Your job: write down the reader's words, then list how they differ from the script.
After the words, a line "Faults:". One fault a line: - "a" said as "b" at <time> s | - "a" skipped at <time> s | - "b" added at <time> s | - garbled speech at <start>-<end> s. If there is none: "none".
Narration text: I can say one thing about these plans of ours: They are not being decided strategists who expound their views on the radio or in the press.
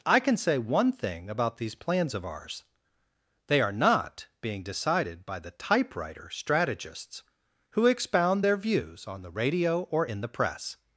I can say one thing about these plans of ours: They are not being decided by the typewriter strategists who expound their views on the radio or in the press.
Faults:
- "by the typewriter" added at 5.2 s